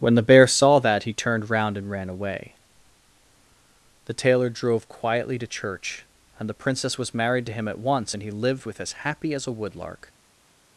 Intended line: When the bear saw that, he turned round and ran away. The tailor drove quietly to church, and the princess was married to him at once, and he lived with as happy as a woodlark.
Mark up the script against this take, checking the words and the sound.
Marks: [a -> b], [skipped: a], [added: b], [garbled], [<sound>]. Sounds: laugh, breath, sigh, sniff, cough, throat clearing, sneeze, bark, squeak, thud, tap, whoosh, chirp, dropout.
When the bear saw that, he turned round and ran away. The tailor drove quietly to church, and the princess was married to him at once, and he lived with as happy as a woodlark.